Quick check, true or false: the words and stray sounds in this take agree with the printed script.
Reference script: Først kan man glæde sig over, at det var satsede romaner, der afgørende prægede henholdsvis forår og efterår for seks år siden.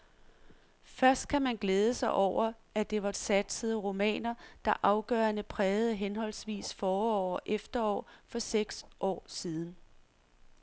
true